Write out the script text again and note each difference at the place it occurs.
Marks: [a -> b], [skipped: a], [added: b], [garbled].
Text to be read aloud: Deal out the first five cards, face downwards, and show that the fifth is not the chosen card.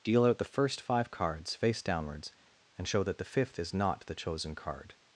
Deal out the first five cards, face downwards, and show that the fifth is not the chosen card.